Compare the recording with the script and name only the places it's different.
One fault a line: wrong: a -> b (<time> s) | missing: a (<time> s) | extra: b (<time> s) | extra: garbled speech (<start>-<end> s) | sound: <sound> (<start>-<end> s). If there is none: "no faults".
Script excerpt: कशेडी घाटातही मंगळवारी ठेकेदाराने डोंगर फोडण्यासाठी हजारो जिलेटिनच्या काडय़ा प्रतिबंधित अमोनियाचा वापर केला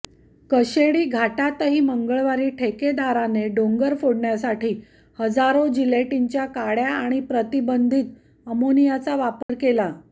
extra: आणि (6.9 s)
sound: dropout (9.4-9.5 s)